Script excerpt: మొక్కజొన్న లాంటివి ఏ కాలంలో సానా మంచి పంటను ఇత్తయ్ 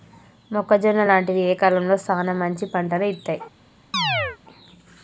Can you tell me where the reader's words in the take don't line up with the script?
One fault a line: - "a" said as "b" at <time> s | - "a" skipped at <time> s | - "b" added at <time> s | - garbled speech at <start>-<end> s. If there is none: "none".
none